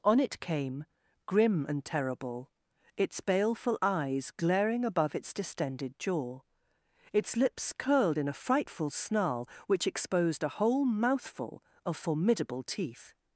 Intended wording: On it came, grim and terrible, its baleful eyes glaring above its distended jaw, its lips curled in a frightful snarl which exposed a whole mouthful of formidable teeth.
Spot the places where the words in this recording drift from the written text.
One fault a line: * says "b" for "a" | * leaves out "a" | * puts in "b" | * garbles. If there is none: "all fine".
all fine